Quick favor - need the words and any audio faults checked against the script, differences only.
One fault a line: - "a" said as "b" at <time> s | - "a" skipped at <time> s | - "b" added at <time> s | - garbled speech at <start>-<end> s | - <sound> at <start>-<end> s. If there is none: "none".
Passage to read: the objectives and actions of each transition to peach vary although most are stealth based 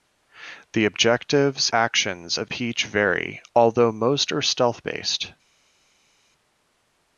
- "and" skipped at 1.7 s
- "each transition to" skipped at 2.5 s